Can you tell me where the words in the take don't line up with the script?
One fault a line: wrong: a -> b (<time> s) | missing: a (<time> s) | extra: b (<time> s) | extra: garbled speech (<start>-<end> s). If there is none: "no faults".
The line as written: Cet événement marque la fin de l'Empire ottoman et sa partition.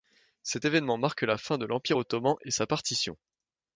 no faults